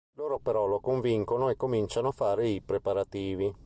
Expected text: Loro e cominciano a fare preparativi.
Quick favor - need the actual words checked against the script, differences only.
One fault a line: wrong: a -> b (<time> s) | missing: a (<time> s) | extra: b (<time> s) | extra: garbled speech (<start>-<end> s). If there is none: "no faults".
extra: però lo convincono (0.4 s)
extra: i (2.5 s)